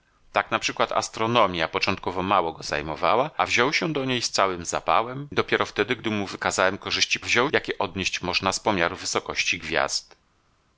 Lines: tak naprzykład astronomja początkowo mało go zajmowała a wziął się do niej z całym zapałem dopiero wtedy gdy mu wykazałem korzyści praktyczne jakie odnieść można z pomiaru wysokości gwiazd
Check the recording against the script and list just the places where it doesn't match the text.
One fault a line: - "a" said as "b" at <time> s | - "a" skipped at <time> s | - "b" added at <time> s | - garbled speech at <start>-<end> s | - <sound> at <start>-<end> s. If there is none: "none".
- "praktyczne" said as "wziął" at 7.2 s